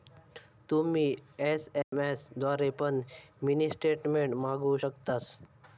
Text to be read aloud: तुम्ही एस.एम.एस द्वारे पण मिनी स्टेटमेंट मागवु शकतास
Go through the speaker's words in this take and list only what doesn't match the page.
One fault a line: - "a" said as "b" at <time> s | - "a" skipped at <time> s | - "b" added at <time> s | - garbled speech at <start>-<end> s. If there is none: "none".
none